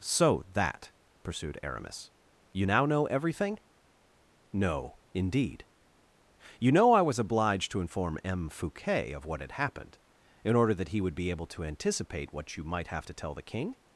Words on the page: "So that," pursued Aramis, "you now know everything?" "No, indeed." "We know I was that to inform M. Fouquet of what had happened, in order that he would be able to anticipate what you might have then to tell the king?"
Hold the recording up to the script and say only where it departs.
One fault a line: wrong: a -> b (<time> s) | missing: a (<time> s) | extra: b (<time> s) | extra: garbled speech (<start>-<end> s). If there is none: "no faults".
wrong: We -> You (6.6 s)
wrong: that -> obliged (7.2 s)
missing: then (13.1 s)